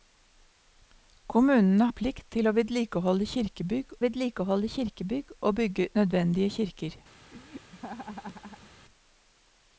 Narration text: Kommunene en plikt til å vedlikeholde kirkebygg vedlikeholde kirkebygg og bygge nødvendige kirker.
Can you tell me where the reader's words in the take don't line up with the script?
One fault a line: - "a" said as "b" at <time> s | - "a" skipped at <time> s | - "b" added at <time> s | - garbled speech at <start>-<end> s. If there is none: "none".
none